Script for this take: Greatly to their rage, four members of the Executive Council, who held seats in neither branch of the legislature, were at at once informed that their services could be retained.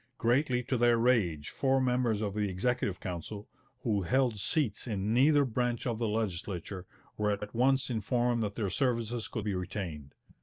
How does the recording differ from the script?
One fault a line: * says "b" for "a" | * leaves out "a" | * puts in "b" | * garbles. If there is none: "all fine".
all fine